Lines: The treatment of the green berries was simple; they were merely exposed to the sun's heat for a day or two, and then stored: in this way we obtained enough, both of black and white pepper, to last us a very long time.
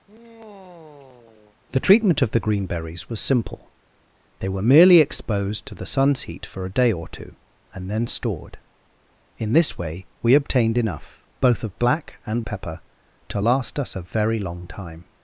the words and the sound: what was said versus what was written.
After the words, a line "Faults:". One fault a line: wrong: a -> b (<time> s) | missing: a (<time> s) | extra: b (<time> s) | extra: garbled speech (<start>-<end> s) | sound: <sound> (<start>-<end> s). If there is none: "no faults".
The treatment of the green berries was simple; they were merely exposed to the sun's heat for a day or two, and then stored: in this way we obtained enough, both of black and pepper, to last us a very long time.
Faults:
sound: sigh (0.1-1.6 s)
missing: white (12.4 s)